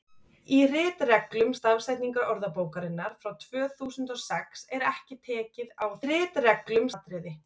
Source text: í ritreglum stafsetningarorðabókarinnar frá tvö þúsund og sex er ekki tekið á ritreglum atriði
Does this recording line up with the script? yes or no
yes